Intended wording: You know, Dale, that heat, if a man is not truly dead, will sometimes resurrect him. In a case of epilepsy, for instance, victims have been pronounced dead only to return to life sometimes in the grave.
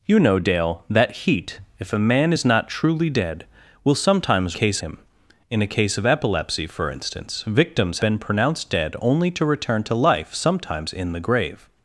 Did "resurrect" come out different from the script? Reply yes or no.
yes